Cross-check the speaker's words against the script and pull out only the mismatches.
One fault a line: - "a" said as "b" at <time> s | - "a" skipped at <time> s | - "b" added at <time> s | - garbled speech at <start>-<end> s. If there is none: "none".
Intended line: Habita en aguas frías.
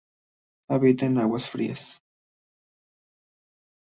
none